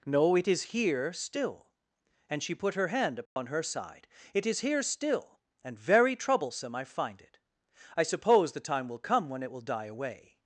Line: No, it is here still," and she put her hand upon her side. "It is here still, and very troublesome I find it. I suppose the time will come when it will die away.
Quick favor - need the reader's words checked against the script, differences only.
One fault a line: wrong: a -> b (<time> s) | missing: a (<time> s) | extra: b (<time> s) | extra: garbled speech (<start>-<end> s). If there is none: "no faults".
no faults